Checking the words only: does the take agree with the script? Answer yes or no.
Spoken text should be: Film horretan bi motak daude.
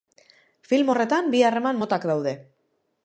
no